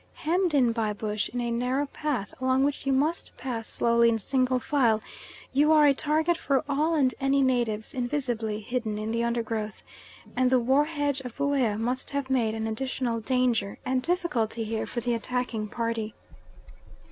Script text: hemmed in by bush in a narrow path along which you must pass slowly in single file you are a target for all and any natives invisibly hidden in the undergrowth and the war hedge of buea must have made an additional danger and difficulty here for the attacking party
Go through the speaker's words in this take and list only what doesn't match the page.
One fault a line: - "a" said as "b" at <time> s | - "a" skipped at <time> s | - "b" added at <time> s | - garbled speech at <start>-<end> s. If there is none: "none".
none